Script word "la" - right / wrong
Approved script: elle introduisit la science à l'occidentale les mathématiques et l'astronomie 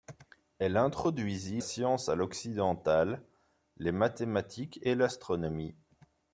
wrong